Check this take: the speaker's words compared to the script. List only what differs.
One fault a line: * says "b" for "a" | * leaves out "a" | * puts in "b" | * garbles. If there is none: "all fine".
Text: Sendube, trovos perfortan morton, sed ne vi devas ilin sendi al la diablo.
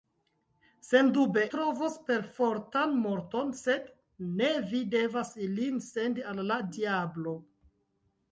all fine